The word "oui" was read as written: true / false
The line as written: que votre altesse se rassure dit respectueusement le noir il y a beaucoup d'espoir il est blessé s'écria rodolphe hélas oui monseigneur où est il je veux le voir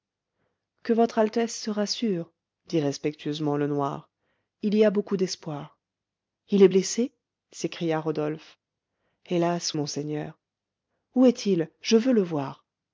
false